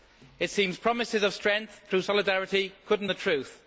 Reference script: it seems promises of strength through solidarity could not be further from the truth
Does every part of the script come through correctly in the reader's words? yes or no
no